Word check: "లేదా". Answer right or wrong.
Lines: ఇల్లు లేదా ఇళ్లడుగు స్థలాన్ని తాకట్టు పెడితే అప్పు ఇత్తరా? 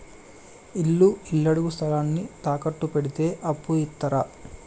wrong